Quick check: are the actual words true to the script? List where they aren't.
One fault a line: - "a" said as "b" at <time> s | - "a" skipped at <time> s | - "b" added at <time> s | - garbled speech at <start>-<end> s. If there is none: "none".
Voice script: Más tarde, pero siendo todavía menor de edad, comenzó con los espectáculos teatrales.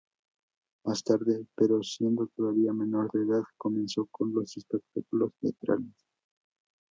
none